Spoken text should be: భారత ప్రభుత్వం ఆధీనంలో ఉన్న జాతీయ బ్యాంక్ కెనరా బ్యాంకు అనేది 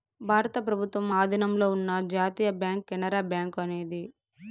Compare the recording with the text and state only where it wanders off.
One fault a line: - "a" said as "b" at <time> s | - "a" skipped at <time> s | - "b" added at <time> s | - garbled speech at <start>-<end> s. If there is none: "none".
none